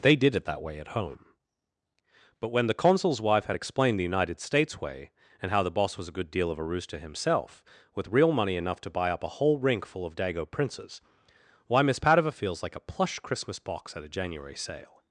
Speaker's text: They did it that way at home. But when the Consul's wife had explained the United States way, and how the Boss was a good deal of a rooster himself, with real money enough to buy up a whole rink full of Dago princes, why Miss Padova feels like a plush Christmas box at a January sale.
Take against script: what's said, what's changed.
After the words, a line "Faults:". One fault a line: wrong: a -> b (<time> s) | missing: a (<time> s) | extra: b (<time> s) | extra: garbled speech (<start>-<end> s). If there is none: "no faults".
They did it that way at home. But when the Consul's wife had explained the United States way, and how the Boss was a good deal of a rooster himself, with real money enough to buy up a whole rink full of Dago princes, why Miss Padova feels like a plush Christmas box at a January sale.
Faults:
no faults